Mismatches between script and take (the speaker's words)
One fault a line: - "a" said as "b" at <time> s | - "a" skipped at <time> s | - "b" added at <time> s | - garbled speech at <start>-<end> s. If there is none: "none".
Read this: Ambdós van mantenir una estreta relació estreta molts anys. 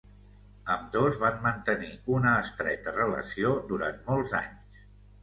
- "estreta" said as "durant" at 3.7 s